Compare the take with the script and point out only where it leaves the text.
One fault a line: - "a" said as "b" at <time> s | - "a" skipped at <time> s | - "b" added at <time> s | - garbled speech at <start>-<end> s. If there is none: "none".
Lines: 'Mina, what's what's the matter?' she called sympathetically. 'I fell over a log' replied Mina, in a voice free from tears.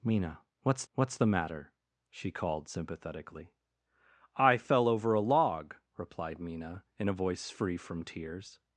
none